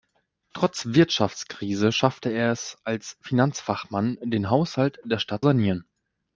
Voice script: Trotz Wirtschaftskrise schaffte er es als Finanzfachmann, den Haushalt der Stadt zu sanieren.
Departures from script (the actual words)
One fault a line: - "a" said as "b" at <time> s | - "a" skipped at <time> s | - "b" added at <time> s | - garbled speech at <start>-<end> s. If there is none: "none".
- "zu" skipped at 5.4 s